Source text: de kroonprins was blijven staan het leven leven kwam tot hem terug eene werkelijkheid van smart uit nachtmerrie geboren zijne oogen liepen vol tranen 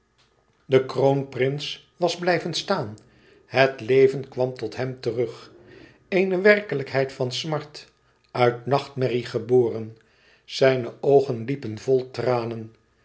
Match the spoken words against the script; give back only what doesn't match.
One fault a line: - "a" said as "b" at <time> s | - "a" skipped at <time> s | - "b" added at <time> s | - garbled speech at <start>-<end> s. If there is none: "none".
- "leven" skipped at 4.3 s